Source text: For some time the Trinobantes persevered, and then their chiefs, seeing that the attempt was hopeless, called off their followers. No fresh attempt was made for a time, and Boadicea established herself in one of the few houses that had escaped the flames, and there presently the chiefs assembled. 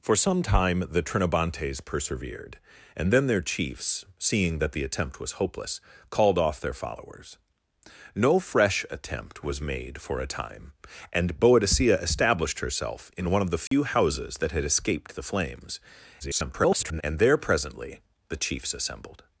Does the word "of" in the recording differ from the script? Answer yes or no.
no